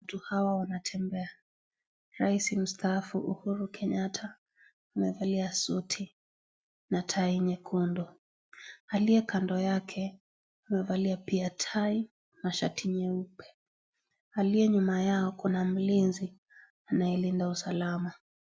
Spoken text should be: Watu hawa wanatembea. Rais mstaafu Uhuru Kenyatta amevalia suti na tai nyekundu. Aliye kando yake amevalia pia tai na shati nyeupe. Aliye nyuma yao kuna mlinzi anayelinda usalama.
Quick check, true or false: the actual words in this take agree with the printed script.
true